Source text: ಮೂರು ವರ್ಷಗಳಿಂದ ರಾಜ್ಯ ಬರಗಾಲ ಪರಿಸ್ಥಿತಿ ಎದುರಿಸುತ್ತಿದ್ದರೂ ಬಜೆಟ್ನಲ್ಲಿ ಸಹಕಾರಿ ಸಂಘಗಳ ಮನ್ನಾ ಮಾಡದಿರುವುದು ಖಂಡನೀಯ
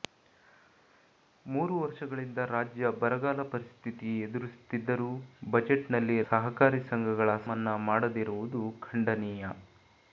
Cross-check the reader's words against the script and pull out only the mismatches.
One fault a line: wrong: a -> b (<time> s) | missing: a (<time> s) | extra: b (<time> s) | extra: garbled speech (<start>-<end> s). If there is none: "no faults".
no faults